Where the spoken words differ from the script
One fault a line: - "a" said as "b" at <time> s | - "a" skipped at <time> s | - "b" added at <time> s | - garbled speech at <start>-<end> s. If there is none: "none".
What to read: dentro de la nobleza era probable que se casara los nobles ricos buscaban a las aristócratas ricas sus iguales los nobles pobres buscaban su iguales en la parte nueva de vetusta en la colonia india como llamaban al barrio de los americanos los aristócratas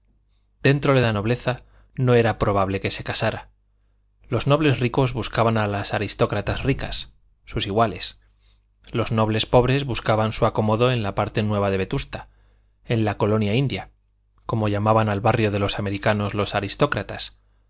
- "no" added at 2.0 s
- "iguales" said as "acomodo" at 10.4 s